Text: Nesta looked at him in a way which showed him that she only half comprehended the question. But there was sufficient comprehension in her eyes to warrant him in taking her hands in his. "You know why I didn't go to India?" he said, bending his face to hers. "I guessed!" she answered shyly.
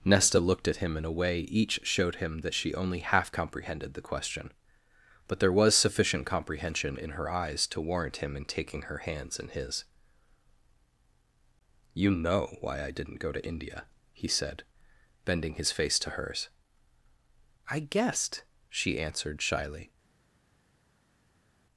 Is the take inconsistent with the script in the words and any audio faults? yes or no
yes